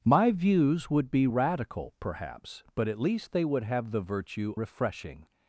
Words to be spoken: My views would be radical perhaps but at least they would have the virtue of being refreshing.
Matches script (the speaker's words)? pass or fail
fail